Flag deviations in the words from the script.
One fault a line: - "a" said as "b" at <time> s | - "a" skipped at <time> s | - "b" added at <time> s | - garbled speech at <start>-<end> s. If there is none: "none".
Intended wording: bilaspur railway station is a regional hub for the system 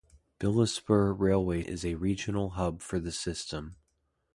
- "station" skipped at 1.6 s